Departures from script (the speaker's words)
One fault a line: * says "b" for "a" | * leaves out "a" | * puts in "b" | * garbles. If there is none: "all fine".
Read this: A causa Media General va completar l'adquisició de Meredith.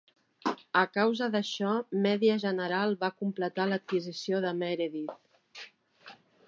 * puts in "d'això"